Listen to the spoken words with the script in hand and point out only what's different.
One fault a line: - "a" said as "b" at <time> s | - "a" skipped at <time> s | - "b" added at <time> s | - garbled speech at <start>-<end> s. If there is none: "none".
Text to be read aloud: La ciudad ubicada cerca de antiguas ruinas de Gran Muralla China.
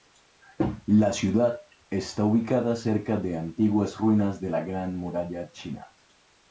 - "está" added at 1.9 s
- "la" added at 4.5 s